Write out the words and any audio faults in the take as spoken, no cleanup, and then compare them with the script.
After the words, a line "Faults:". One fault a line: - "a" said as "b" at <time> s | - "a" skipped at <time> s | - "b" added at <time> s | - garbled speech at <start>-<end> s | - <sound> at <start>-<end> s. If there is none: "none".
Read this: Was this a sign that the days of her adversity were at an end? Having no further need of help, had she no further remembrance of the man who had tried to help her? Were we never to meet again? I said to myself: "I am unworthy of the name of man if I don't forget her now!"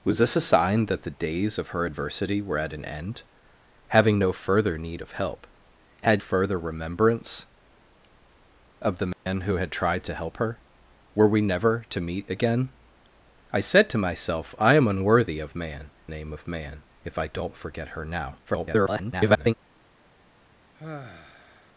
Was this a sign that the days of her adversity were at an end? Having no further need of help, had further remembrance of the man who had tried to help her? Were we never to meet again? I said to myself: "I am unworthy of man name of man if I don't forget her now!" [garbled]
Faults:
- "she no" skipped at 6.2 s
- dropout at 9.1-9.3 s
- "the" said as "man" at 15.6 s
- garbled speech at 18.5-19.5 s
- sigh at 20.7-21.7 s